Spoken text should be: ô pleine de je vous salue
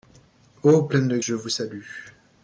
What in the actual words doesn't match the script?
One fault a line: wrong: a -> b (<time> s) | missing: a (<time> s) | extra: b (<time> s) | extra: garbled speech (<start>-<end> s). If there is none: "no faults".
no faults